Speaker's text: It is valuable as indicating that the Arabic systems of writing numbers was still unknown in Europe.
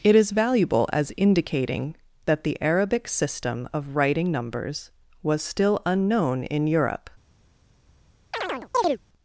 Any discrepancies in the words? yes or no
yes